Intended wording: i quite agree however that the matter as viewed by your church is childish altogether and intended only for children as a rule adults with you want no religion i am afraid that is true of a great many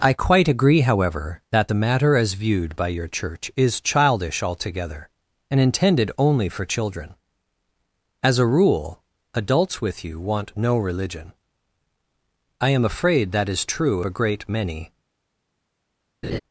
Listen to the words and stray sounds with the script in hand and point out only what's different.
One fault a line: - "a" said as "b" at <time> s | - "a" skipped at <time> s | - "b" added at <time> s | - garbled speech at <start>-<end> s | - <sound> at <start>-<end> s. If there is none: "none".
- "of" skipped at 14.0 s
- laugh at 16.2-16.4 s